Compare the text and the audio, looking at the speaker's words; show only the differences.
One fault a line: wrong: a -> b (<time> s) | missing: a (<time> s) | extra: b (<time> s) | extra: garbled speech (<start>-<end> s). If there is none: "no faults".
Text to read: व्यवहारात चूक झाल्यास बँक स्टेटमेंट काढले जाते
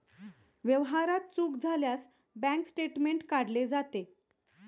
no faults